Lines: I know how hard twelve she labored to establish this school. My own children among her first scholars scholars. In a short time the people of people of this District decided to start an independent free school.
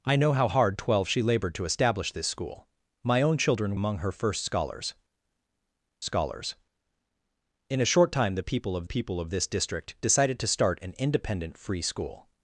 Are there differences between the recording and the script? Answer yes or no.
no